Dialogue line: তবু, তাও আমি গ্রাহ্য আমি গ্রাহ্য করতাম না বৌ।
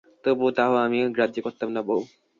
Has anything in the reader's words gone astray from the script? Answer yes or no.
yes